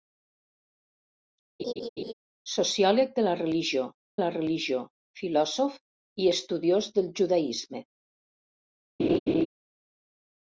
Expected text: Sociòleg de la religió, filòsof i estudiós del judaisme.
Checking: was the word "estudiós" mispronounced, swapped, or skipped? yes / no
no